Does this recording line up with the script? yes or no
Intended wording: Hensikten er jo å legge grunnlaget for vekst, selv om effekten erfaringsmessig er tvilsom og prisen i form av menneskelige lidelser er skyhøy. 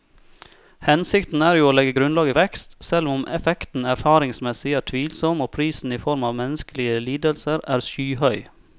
no